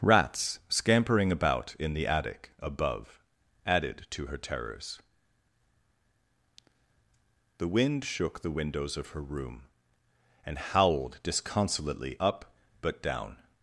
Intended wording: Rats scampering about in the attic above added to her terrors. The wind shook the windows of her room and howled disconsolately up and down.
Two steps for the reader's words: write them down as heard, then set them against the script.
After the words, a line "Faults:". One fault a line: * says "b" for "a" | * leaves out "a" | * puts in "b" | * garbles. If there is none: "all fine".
Rats scampering about in the attic above added to her terrors. The wind shook the windows of her room and howled disconsolately up but down.
Faults:
* says "but" for "and"